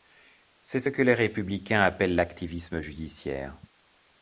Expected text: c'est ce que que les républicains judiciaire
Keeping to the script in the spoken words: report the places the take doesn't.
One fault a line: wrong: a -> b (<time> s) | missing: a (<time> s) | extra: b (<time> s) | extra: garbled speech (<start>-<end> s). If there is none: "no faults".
missing: que (1.0 s)
extra: appellent l'activisme (1.8 s)